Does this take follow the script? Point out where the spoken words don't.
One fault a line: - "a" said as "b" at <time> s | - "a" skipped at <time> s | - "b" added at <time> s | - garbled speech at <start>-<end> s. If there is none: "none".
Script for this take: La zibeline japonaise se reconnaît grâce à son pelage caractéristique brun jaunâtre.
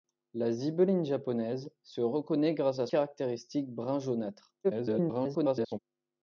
- "son pelage" skipped at 2.9 s
- garbled speech at 4.6-5.8 s